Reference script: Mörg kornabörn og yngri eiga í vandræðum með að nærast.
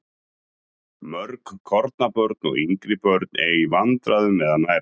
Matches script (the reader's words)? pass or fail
fail